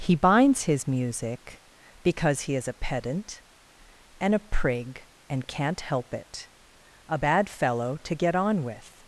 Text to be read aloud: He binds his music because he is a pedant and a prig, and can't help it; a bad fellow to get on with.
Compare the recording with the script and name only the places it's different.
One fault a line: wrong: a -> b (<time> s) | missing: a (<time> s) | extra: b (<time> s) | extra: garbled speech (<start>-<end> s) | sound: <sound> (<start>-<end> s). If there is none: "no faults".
no faults